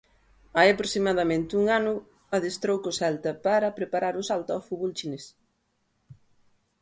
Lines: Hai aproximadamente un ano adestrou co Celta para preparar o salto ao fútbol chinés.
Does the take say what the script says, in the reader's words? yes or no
yes